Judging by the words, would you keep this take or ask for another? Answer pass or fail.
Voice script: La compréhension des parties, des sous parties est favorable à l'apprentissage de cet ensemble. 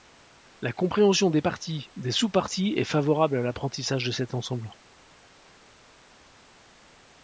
pass